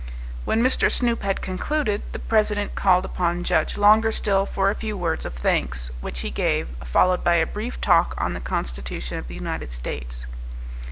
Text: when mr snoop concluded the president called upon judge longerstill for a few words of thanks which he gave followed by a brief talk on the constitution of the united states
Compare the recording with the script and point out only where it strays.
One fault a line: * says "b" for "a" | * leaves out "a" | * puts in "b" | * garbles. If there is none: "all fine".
* puts in "had"